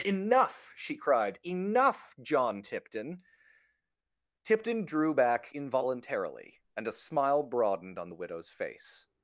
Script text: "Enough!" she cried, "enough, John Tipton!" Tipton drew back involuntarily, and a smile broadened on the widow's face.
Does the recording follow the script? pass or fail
pass